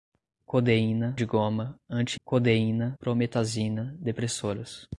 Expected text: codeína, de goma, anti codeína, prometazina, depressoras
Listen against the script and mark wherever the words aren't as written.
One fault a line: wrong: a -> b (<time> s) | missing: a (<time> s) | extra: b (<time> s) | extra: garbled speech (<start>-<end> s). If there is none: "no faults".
no faults